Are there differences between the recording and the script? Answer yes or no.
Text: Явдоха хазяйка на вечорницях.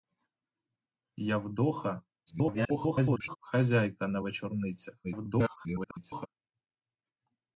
yes